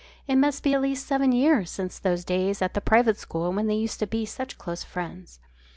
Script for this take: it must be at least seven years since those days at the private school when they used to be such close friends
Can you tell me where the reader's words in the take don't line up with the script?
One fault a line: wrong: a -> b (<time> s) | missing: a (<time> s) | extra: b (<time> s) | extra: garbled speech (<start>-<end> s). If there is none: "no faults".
no faults